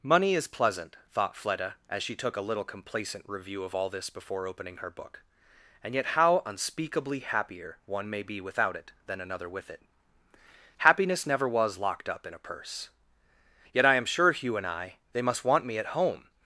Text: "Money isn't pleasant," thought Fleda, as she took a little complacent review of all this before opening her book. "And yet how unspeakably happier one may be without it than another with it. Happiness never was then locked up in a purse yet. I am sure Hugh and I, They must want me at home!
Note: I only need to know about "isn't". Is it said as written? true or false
false